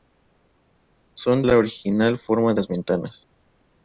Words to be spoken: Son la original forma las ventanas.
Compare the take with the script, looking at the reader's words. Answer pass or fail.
pass